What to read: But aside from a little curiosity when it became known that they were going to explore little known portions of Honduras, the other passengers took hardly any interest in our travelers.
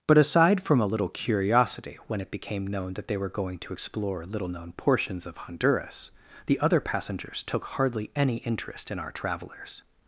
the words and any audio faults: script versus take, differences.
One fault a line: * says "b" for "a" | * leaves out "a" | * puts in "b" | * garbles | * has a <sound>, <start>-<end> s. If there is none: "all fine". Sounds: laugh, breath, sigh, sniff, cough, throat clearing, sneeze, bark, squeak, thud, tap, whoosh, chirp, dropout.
all fine